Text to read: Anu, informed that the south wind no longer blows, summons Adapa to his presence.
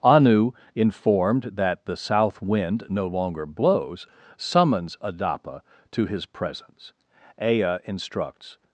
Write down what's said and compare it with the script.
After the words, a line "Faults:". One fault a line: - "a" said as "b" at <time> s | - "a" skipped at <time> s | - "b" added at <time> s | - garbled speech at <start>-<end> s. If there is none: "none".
Anu, informed that the south wind no longer blows, summons Adapa to his presence. Ea instructs
Faults:
- "Ea instructs" added at 7.4 s